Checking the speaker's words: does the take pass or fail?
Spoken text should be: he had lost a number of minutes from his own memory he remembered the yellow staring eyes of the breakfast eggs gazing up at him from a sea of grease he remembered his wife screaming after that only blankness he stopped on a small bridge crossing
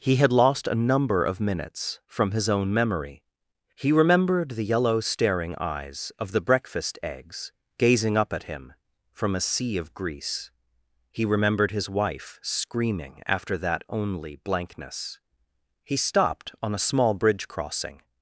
pass